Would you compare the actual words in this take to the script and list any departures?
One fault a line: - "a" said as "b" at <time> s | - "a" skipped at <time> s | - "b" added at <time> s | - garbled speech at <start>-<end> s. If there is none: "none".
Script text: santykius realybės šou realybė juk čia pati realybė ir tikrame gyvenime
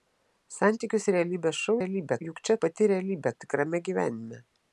none